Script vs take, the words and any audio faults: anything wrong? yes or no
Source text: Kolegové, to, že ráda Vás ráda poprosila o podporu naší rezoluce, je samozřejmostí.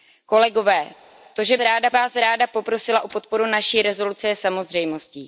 no